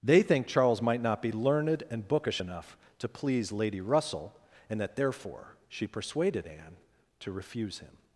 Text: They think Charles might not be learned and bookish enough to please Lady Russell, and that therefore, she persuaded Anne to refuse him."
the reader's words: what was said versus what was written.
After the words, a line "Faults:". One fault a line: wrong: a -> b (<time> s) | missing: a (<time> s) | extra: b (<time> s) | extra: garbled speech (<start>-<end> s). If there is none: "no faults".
They think Charles might not be learned and bookish enough to please Lady Russell, and that therefore, she persuaded Anne to refuse him."
Faults:
no faults